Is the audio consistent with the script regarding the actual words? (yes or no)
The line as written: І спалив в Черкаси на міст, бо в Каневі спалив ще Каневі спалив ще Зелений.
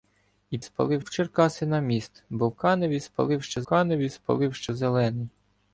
yes